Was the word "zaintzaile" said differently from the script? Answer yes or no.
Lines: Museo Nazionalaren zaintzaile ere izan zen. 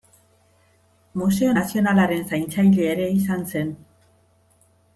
no